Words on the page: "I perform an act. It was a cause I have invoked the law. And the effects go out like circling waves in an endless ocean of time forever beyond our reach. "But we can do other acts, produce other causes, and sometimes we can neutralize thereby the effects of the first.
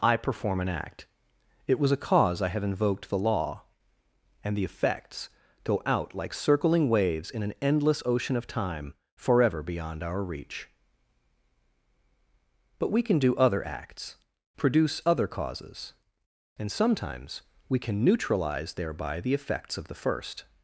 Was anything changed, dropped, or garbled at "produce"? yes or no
no